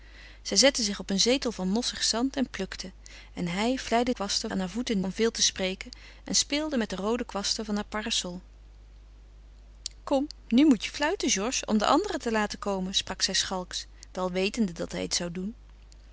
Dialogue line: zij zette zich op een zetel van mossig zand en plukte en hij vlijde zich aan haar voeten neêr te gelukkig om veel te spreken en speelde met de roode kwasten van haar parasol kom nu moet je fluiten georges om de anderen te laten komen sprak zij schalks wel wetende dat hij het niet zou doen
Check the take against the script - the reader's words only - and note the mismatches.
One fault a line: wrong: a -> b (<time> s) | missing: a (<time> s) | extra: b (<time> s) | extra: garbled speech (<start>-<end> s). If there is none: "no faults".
wrong: zich -> kwasten (4.1 s)
missing: neêr te gelukkig (5.0 s)
missing: niet (15.1 s)